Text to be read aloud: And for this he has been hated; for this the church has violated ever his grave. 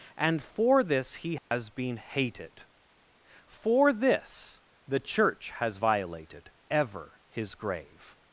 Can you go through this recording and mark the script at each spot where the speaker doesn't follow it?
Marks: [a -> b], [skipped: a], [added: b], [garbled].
And for this he has been hated; for this the church has violated ever his grave.